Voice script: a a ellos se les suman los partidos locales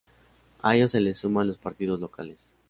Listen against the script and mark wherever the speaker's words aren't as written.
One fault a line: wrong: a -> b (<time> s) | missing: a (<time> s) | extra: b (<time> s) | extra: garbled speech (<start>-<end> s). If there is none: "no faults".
missing: a (0.8 s)